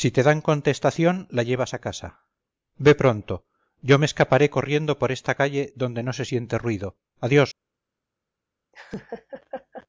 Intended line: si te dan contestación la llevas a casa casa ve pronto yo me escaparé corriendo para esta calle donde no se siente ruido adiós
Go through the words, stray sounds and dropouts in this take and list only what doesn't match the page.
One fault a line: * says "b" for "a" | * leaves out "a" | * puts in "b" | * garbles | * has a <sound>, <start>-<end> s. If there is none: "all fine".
* leaves out "casa"
* says "por" for "para"
* has a laugh, 8.7-9.9 s